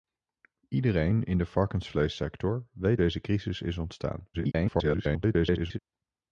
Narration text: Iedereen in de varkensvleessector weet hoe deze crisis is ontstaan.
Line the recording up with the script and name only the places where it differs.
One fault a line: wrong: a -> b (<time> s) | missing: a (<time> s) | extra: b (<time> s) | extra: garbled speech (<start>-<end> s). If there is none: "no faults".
missing: hoe (3.0 s)
extra: garbled speech (4.3-5.8 s)